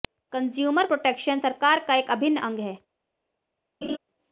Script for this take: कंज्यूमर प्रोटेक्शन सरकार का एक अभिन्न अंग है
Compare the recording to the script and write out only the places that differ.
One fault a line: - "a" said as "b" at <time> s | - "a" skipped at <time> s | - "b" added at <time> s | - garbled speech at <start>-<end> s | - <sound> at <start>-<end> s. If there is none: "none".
- laugh at 3.8-4.0 s